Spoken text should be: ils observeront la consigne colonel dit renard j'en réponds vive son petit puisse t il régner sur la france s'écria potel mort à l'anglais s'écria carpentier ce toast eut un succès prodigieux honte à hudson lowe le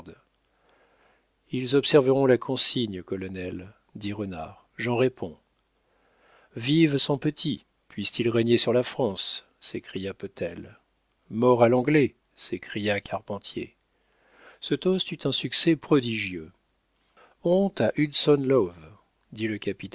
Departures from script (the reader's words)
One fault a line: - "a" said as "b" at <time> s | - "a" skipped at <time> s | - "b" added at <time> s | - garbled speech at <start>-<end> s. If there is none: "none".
- "dit" added at 19.3 s